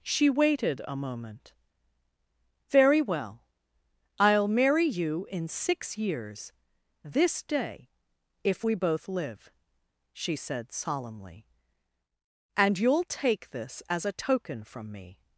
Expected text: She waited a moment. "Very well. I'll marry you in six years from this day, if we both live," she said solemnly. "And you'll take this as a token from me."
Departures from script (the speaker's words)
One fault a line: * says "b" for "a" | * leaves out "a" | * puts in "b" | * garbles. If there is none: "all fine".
* leaves out "from"